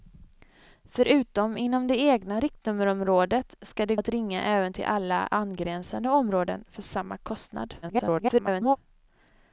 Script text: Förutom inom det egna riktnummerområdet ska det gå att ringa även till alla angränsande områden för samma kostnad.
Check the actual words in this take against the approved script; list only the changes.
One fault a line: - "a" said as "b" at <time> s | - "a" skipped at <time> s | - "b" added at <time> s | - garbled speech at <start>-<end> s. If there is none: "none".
- "gå" skipped at 4.0 s
- garbled speech at 7.8-8.8 s